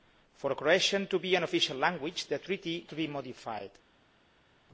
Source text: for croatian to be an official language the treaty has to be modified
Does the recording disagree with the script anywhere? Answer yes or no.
yes